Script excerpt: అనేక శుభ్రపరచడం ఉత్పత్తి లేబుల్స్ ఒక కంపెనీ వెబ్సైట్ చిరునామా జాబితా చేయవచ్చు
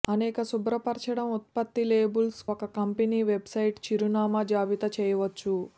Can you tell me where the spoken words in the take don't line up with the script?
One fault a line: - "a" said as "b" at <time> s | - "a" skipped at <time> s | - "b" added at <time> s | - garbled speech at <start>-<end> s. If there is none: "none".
none